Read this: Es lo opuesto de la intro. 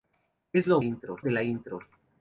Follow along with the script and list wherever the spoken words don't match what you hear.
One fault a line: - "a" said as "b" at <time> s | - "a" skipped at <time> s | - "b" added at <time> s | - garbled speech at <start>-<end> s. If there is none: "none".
- "opuesto" said as "intro" at 0.8 s